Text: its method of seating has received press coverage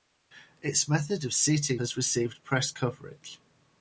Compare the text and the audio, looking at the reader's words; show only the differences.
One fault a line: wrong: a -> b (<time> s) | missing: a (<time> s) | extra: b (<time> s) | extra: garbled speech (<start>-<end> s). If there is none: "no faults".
no faults